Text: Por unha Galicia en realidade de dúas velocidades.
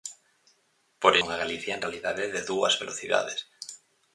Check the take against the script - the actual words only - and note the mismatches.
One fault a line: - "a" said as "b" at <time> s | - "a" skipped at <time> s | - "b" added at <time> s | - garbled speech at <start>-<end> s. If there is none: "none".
none